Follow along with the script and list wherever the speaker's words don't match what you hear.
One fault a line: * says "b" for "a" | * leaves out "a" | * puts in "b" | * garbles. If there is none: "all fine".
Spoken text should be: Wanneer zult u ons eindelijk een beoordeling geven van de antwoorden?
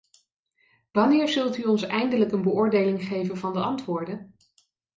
all fine